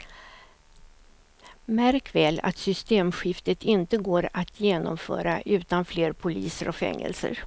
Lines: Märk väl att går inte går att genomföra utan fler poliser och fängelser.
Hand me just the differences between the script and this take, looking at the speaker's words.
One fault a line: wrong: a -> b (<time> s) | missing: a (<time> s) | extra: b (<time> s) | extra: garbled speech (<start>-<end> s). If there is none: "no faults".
wrong: går -> systemskiftet (2.6 s)